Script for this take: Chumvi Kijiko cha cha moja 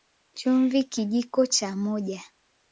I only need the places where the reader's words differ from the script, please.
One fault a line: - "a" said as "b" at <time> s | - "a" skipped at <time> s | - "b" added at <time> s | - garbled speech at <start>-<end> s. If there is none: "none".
- "cha" skipped at 1.8 s